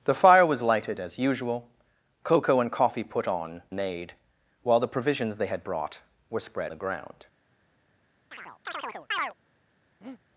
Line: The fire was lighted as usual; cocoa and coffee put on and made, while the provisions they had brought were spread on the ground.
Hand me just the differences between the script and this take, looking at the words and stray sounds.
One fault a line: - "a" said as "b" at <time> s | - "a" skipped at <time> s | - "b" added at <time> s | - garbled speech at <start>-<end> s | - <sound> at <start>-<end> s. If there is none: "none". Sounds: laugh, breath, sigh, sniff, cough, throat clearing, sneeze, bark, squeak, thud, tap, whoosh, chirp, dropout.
- "and" skipped at 3.6 s
- "on" skipped at 6.7 s
- chirp at 8.3-9.3 s
- breath at 10.0-10.2 s